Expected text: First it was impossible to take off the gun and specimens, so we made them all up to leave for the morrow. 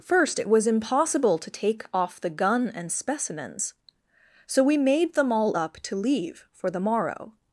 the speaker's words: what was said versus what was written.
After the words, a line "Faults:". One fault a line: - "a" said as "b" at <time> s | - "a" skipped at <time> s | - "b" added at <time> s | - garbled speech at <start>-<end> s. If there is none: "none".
First it was impossible to take off the gun and specimens, so we made them all up to leave for the morrow.
Faults:
none